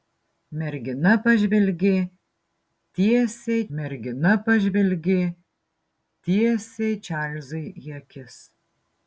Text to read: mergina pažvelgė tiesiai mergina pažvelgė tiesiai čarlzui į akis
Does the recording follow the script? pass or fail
pass